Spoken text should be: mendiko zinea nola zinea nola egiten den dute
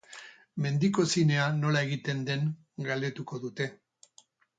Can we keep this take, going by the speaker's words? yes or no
no